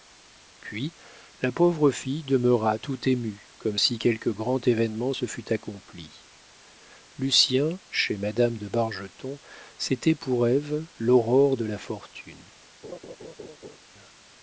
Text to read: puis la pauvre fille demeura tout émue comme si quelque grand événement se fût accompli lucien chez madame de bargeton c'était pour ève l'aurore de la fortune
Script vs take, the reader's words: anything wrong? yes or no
no